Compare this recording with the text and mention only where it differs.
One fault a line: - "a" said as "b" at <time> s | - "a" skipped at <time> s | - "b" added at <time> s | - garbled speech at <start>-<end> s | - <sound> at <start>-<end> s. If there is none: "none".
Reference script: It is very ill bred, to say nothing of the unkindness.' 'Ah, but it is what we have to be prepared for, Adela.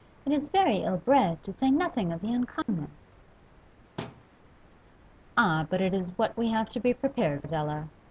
- dropout at 2.6-2.7 s
- thud at 4.0-4.2 s
- "for" skipped at 7.4 s